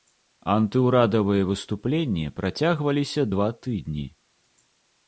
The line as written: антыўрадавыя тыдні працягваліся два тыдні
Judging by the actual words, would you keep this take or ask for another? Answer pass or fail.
fail